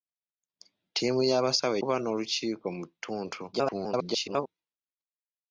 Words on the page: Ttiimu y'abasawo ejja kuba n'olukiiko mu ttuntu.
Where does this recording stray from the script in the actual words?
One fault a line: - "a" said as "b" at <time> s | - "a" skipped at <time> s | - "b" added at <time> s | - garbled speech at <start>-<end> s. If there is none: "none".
- "ejja" skipped at 1.8 s
- garbled speech at 3.5-4.5 s